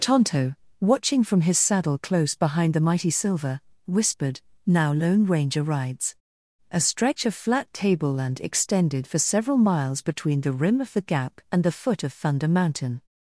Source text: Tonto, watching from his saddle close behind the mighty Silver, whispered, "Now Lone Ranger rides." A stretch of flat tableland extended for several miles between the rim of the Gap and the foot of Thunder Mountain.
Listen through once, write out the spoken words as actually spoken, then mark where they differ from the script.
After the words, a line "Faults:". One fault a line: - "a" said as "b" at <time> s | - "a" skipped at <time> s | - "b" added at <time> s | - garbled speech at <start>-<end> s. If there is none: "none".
Tonto, watching from his saddle close behind the mighty Silver, whispered, "Now Lone Ranger rides." A stretch of flat tableland extended for several miles between the rim of the Gap and the foot of Thunder Mountain.
Faults:
none